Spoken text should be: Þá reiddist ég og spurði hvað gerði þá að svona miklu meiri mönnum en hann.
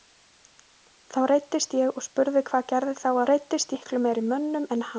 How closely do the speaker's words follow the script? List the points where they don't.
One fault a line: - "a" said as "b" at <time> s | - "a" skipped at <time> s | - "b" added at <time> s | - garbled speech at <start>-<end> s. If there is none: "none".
- "svona" said as "reiddist" at 3.3 s